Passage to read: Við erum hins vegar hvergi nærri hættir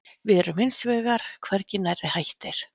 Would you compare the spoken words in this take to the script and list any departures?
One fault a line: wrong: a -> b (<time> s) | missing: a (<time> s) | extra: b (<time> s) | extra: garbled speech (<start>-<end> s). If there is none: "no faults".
no faults